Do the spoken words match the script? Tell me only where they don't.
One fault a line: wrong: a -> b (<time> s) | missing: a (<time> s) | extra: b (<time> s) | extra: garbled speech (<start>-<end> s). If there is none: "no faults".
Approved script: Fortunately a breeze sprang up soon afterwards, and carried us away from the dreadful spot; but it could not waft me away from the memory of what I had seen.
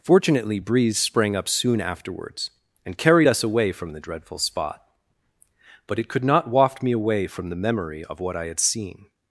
missing: a (0.6 s)